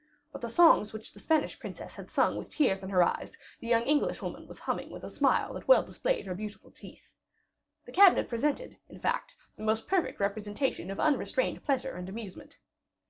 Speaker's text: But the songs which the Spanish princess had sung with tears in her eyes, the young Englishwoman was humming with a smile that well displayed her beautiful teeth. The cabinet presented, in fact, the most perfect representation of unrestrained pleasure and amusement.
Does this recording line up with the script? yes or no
yes